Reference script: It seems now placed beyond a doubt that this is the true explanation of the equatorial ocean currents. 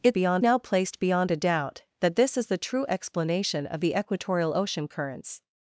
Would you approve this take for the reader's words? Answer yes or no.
no